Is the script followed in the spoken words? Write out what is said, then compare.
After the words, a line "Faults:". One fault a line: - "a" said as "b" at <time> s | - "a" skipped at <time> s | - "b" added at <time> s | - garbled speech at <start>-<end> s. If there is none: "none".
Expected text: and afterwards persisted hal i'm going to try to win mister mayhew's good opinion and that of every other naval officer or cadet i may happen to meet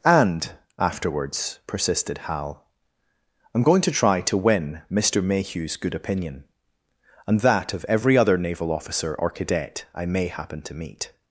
and afterwards persisted hal i'm going to try to win mister mayhew's good opinion and that of every other naval officer or cadet i may happen to meet
Faults:
none